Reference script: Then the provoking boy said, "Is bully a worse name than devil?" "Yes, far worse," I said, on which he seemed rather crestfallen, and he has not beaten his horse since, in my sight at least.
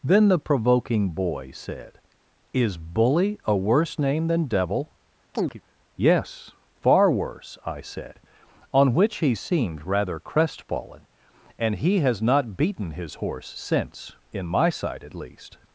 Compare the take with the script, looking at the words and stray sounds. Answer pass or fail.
fail